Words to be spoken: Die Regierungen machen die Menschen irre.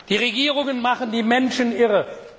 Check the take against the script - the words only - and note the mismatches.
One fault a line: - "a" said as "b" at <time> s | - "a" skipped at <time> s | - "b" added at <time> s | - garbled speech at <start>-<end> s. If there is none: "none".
none